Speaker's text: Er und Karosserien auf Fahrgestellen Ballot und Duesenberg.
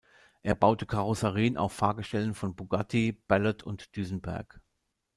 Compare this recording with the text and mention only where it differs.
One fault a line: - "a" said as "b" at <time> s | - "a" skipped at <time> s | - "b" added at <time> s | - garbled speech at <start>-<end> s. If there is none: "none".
- "und" said as "baute" at 0.6 s
- "von Bugatti" added at 2.3 s